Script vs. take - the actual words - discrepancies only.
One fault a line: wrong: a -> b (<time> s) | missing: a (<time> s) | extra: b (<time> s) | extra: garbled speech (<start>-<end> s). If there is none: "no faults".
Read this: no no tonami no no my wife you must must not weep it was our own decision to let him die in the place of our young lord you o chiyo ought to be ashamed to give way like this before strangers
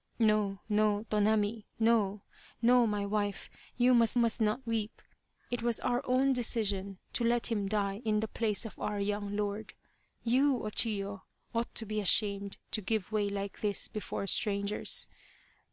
no faults